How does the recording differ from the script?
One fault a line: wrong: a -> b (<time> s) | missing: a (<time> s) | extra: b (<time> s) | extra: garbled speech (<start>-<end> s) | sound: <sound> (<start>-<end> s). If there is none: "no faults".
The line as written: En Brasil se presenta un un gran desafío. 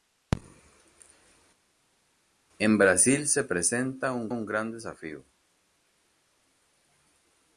no faults